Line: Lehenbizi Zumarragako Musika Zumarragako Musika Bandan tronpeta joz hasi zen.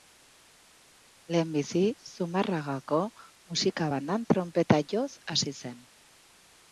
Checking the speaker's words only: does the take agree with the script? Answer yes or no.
no